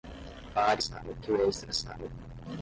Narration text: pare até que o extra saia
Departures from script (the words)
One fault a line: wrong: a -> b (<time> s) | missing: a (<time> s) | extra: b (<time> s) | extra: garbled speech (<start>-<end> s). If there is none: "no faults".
wrong: até -> saia (0.8 s)